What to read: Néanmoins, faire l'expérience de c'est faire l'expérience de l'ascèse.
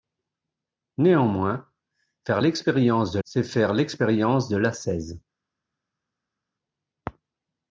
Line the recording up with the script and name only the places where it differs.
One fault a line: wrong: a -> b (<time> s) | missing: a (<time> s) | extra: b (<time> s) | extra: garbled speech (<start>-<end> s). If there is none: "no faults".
no faults